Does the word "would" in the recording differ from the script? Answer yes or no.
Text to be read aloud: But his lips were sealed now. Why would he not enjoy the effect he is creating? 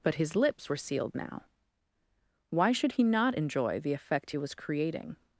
yes